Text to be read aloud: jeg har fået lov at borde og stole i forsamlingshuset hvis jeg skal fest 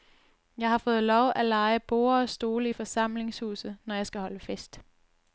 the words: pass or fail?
fail